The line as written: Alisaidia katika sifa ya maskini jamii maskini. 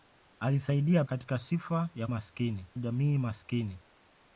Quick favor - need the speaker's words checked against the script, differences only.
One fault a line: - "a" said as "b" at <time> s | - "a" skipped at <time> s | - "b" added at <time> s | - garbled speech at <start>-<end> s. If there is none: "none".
none